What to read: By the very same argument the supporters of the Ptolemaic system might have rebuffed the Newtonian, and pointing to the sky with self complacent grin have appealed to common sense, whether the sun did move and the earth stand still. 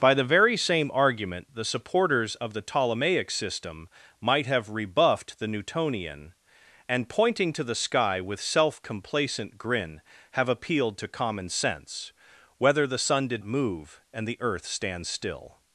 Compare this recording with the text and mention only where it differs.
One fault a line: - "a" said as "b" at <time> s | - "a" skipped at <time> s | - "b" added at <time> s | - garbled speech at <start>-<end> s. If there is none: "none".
none